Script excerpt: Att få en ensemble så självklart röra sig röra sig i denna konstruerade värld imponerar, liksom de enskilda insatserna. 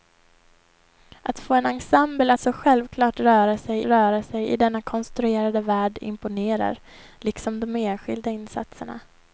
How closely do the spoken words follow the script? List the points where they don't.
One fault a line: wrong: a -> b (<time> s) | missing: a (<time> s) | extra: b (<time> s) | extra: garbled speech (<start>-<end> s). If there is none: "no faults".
no faults